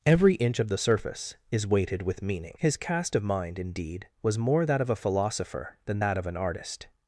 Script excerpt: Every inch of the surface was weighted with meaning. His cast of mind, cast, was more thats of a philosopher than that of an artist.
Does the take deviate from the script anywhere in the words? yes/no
yes